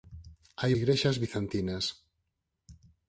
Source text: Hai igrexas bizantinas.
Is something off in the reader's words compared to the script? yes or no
no